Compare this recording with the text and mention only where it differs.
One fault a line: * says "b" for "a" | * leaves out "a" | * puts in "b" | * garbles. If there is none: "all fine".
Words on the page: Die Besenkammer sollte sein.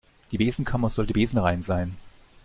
* puts in "besenrein"